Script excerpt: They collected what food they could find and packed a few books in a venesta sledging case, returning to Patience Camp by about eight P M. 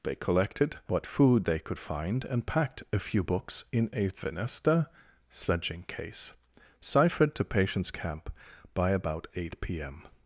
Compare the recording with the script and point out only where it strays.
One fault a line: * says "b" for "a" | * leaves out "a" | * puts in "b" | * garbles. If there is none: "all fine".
* says "ciphered" for "returning"